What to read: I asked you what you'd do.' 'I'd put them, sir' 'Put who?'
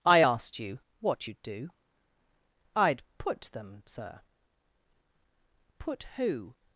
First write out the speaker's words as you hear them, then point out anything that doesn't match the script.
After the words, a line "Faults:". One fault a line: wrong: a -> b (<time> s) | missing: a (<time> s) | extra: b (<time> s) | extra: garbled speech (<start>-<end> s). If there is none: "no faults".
I asked you what you'd do.' 'I'd put them, sir' 'Put who?'
Faults:
no faults